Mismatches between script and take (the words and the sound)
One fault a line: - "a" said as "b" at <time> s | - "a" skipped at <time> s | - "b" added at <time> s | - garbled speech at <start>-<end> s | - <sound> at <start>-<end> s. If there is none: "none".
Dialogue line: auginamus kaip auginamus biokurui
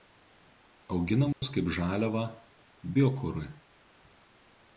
- dropout at 1.3-1.4 s
- "auginamus" said as "žaliavą" at 1.8 s